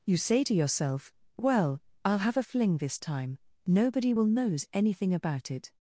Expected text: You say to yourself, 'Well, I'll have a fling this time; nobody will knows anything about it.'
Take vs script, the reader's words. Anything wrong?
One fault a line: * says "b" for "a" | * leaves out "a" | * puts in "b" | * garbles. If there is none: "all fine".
all fine